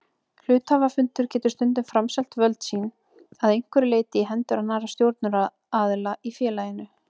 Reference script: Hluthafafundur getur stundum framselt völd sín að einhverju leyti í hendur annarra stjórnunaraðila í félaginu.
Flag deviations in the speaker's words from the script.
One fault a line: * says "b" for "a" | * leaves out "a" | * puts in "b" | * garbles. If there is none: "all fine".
all fine